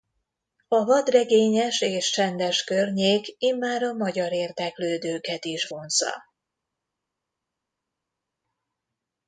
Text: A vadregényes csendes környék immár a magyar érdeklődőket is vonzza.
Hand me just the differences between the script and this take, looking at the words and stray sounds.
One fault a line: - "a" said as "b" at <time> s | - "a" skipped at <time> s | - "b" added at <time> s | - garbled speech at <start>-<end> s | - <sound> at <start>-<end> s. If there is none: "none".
- "és" added at 1.8 s